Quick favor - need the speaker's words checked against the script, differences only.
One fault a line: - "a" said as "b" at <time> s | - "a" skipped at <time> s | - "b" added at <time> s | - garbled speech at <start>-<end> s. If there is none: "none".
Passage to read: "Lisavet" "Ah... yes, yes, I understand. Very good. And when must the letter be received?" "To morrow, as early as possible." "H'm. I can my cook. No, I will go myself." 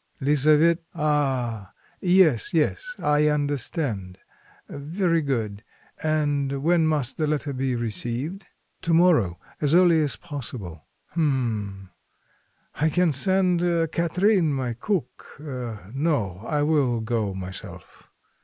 - "send Katrine" added at 13.1 s